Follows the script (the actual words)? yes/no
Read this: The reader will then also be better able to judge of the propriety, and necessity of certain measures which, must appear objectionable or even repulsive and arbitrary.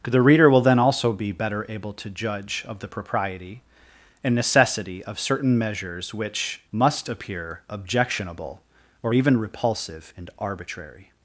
yes